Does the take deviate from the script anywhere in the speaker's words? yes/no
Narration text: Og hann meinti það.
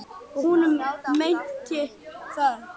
yes